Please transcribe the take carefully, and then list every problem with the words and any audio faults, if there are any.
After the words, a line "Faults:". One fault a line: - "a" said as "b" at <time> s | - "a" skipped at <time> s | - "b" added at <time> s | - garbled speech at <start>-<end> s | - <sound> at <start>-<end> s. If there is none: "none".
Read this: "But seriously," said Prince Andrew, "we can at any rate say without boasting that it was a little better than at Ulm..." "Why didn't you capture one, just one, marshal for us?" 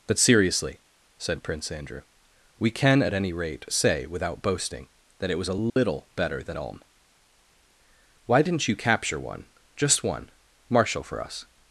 "But seriously," said Prince Andrew, "we can at any rate say without boasting that it was a little better than Ulm..." "Why didn't you capture one, just one, marshal for us?"
Faults:
- dropout at 5.7-5.8 s
- "at" skipped at 6.6 s